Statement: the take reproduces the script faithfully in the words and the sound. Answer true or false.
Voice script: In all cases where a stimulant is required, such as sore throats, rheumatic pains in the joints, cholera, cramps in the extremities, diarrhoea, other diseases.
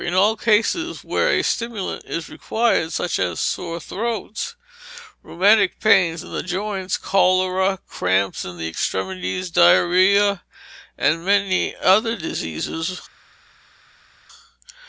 false